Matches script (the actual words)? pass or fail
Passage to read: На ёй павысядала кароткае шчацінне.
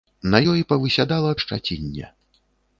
fail